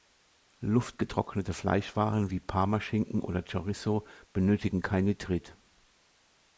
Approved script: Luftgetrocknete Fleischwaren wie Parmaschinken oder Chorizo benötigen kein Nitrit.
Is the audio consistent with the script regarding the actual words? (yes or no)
yes